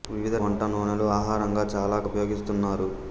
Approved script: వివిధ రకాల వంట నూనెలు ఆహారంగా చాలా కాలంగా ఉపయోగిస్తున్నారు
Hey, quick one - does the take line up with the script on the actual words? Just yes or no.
no